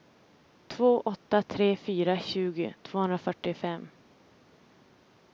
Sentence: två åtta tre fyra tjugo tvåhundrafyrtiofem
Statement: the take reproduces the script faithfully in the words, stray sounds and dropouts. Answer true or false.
true